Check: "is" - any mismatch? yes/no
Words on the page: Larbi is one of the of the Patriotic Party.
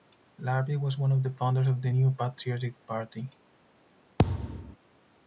yes